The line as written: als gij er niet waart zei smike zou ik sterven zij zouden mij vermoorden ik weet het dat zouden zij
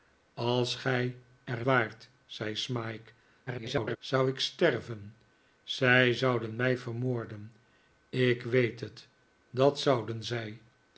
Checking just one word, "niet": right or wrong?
wrong